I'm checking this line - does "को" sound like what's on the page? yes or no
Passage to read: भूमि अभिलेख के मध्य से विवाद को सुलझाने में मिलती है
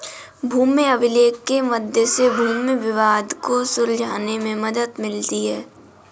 yes